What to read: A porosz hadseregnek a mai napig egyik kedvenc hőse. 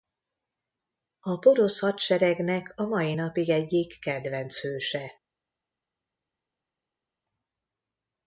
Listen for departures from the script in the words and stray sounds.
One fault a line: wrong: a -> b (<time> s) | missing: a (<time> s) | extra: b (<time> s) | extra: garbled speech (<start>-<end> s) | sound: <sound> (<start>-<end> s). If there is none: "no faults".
no faults